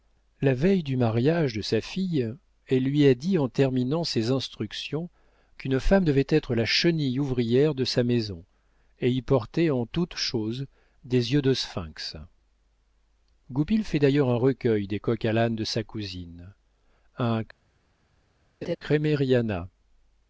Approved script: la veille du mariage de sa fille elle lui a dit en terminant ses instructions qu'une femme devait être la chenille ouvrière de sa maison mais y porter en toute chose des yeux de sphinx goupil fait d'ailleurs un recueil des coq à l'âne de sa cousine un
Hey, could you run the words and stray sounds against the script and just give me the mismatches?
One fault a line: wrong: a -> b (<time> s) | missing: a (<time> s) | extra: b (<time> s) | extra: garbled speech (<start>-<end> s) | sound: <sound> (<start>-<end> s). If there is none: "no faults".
wrong: mais -> et (9.0 s)
sound: laugh (18.6-18.8 s)